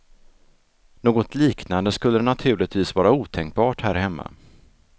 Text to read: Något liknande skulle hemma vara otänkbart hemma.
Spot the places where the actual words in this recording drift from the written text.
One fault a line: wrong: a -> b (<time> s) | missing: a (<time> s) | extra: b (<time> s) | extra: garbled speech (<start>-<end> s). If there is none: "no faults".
wrong: hemma -> naturligtvis (2.2 s)
extra: här (3.8 s)